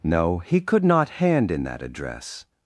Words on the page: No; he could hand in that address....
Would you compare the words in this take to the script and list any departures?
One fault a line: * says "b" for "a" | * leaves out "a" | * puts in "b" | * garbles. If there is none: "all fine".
* puts in "not"